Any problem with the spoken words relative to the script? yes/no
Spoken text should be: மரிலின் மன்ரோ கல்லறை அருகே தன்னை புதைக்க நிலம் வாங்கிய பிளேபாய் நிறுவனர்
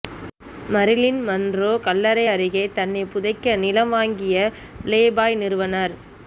no